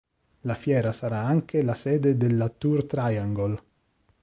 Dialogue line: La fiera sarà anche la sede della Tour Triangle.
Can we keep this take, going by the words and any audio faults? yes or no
yes